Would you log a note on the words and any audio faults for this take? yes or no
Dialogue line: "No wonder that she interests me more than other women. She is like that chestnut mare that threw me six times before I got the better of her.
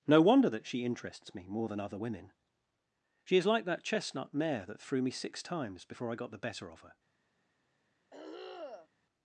yes